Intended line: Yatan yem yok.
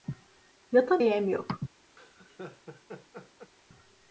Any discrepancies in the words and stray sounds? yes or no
yes